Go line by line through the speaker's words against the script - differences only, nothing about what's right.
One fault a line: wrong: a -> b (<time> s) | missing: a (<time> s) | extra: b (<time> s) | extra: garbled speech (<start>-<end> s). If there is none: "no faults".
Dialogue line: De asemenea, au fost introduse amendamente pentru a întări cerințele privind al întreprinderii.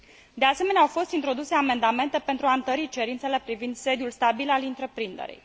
extra: sediul stabil (3.8 s)